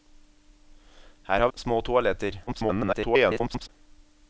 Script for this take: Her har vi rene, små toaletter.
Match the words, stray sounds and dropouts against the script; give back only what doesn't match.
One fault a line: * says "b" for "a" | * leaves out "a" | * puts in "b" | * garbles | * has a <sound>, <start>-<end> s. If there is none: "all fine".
* leaves out "vi rene"
* garbles